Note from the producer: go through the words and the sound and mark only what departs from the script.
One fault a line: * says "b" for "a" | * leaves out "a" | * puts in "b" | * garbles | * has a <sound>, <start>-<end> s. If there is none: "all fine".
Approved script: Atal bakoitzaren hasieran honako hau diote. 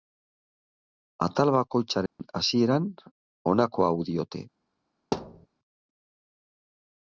* has a dropout, 2.1-2.2 s
* has a thud, 5.1-5.5 s